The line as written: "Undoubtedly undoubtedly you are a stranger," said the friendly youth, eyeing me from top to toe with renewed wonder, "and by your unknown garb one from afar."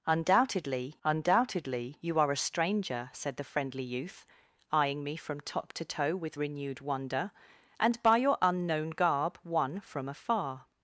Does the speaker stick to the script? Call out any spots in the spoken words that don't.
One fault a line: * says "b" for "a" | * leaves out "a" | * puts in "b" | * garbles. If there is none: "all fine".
all fine